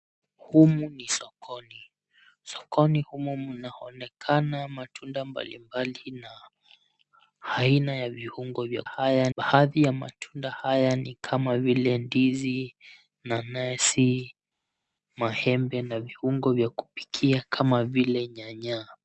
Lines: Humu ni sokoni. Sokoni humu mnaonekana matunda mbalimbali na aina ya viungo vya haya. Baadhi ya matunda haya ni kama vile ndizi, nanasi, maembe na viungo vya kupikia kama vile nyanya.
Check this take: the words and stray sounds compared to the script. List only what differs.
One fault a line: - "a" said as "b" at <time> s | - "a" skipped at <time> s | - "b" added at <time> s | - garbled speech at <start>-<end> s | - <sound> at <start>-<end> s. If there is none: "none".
none